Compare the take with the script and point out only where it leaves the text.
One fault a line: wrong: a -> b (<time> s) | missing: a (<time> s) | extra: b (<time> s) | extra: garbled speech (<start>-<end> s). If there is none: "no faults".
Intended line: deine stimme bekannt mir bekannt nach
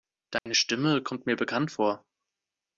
wrong: bekannt -> kommt (1.0 s)
wrong: nach -> vor (1.7 s)